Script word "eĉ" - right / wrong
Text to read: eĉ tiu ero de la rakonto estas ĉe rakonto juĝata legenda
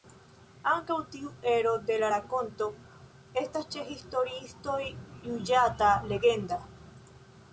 wrong